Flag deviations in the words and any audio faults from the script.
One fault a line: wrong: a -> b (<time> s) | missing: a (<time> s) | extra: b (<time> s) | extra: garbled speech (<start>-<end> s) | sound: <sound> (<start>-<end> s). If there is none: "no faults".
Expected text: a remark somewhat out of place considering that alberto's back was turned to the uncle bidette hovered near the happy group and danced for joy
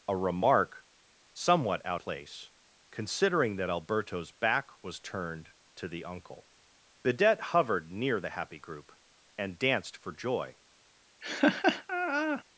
missing: of (2.0 s)
sound: laugh (11.2-12.4 s)